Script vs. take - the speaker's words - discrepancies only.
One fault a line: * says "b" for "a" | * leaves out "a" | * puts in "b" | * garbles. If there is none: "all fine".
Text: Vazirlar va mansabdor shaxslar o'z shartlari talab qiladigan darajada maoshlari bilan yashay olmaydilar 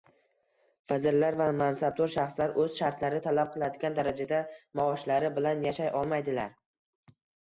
all fine